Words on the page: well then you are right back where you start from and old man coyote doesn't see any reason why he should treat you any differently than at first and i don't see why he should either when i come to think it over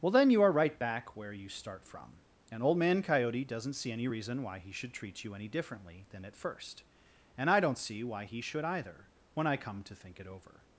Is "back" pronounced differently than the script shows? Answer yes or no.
no